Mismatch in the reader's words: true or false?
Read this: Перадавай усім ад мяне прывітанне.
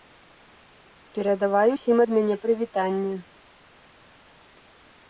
false